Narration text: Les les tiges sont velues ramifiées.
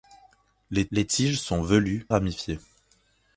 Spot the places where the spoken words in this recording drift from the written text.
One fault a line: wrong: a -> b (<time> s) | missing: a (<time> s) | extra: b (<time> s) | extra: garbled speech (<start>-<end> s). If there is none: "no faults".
no faults